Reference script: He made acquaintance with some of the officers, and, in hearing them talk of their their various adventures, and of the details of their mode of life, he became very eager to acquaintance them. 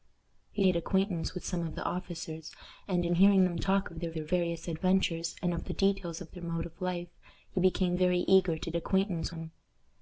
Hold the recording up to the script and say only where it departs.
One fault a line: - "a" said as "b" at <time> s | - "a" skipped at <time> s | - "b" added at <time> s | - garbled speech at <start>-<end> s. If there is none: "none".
none